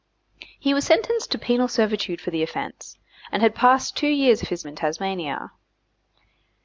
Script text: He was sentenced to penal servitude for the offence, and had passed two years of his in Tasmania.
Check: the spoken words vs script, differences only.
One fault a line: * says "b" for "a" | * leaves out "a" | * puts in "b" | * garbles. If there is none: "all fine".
all fine